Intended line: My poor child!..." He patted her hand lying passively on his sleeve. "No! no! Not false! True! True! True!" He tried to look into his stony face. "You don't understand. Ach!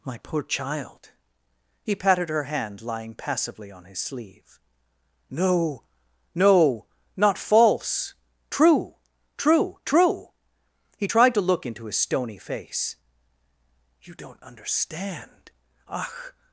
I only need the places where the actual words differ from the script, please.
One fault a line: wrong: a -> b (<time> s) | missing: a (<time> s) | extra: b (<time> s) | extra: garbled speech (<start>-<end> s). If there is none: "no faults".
no faults